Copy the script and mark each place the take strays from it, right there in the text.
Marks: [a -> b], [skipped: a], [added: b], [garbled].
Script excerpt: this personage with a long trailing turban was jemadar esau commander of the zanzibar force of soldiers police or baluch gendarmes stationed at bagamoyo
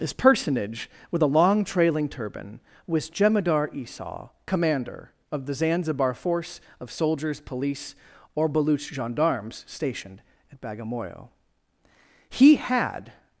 this personage with a long trailing turban was jemadar esau commander of the zanzibar force of soldiers police or baluch gendarmes stationed at bagamoyo [added: he had]